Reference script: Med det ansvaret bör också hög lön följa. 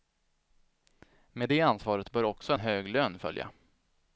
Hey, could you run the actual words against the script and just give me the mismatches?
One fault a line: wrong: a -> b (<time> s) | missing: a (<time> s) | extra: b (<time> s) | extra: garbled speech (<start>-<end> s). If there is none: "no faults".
no faults